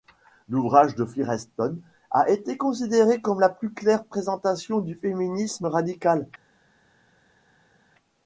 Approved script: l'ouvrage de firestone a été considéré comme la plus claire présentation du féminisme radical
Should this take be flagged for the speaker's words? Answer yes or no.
no